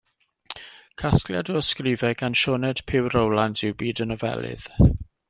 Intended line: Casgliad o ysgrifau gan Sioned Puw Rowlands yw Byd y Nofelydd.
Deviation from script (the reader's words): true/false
false